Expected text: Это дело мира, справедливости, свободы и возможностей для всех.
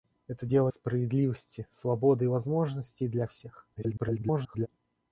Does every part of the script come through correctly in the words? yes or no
no